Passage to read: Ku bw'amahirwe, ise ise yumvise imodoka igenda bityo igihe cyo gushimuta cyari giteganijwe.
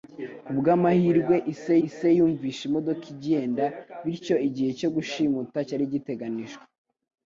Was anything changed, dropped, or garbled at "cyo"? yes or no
no